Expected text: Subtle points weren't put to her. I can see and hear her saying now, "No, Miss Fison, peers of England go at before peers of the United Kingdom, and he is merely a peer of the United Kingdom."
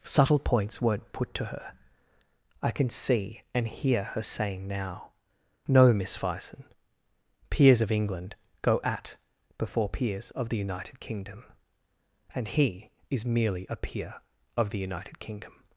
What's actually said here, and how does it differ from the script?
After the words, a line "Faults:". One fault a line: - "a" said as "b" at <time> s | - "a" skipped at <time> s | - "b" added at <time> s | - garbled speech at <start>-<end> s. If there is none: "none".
Subtle points weren't put to her. I can see and hear her saying now, "No, Miss Fison, peers of England go at before peers of the United Kingdom, and he is merely a peer of the United Kingdom."
Faults:
none